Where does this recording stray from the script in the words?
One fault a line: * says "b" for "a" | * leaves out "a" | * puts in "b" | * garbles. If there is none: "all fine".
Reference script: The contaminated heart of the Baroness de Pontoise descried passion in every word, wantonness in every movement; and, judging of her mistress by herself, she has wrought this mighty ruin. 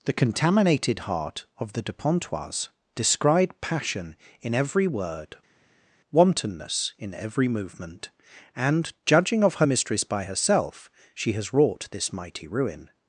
* leaves out "Baroness"